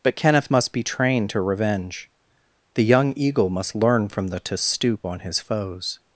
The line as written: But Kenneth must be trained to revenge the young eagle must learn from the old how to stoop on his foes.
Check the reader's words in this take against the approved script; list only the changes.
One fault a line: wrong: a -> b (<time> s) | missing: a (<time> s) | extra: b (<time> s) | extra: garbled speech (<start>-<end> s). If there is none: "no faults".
missing: old how (4.4 s)